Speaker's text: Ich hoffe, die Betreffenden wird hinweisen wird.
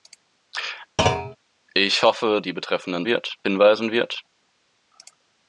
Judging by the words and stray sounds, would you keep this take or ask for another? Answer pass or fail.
fail